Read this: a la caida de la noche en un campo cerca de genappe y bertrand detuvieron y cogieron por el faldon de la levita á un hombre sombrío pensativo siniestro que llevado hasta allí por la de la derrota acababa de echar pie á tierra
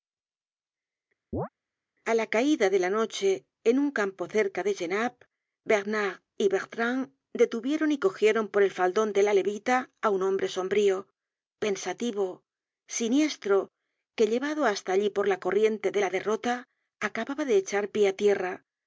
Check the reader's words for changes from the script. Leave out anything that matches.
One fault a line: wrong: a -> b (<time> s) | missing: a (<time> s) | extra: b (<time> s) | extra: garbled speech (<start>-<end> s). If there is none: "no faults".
extra: bernard (5.7 s)
extra: corriente (15.4 s)